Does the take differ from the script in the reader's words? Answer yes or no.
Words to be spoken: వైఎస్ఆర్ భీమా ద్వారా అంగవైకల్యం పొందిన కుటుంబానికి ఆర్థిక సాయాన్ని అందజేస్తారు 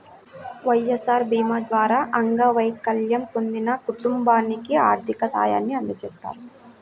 no